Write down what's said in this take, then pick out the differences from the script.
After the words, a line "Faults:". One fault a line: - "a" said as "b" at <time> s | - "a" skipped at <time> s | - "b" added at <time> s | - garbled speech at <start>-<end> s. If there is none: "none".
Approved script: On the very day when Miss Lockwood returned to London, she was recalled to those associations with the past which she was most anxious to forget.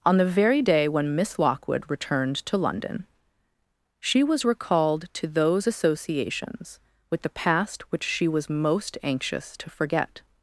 On the very day when Miss Lockwood returned to London, she was recalled to those associations with the past which she was most anxious to forget.
Faults:
none